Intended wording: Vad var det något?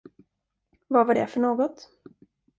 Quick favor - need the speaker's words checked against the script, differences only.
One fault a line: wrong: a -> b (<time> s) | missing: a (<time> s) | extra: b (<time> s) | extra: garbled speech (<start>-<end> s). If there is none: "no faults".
extra: för (1.3 s)